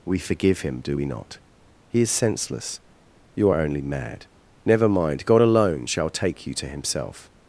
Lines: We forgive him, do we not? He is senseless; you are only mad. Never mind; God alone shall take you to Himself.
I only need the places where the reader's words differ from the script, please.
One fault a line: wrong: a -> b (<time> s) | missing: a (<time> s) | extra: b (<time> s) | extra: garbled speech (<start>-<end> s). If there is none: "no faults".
no faults